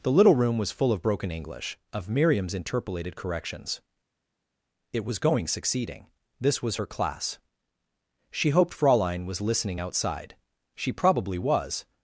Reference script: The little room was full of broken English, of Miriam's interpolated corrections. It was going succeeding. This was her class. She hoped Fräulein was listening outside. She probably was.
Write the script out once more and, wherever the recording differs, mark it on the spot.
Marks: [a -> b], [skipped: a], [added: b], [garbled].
The little room was full of broken English, of Miriam's interpolated corrections. It was going succeeding. This was her class. She hoped Fräulein was listening outside. She probably was.